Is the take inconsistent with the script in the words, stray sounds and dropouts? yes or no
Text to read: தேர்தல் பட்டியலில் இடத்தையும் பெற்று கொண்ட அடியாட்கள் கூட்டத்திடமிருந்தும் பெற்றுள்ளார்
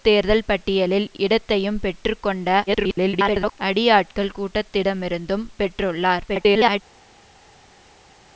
yes